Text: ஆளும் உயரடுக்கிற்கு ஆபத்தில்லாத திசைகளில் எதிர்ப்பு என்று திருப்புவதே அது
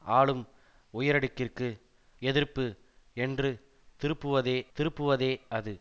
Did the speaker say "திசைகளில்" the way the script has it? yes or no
no